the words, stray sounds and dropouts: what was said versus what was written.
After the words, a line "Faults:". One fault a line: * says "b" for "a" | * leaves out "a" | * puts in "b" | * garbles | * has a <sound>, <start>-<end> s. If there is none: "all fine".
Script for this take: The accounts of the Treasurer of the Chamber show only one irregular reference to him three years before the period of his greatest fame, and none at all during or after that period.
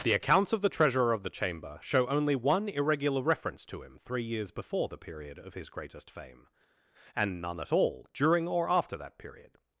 The accounts of the Treasurer of the Chamber show only one irregular reference to him three years before the period of his greatest fame, and none at all during or after that period.
Faults:
all fine